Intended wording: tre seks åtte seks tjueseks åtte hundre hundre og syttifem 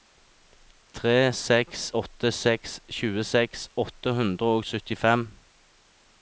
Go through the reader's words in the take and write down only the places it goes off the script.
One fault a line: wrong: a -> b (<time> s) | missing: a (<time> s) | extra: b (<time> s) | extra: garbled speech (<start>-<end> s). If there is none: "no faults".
missing: hundre (4.5 s)